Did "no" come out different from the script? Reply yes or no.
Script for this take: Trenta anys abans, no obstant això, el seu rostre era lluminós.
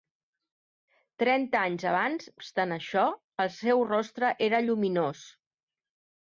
yes